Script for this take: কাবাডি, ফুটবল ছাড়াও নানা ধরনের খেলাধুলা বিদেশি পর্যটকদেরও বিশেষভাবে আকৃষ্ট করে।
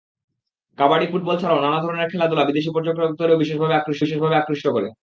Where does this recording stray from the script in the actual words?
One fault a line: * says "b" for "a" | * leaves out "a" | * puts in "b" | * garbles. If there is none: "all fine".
* puts in "বিশেষভাবে আকৃষ্ট"